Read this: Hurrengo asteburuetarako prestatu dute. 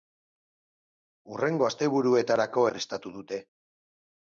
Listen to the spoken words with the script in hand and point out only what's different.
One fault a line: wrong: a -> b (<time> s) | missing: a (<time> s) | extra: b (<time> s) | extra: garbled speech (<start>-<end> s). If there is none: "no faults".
no faults